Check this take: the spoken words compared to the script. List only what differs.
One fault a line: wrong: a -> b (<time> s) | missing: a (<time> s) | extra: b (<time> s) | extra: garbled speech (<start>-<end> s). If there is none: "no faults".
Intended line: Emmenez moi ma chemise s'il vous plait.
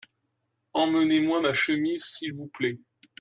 no faults